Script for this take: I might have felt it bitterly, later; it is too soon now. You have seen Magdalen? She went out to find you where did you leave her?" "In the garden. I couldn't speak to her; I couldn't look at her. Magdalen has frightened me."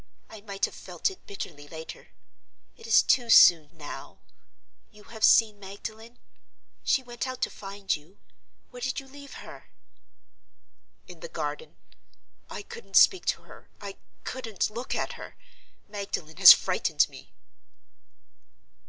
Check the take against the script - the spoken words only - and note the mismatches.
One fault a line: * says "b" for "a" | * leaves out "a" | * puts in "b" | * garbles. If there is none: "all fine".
all fine